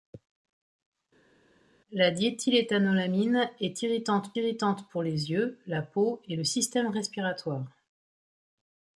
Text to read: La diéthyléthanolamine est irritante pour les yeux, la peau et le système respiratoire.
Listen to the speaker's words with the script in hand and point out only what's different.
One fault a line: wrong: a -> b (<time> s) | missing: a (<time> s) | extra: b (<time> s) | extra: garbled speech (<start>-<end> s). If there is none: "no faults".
extra: irritante (4.4 s)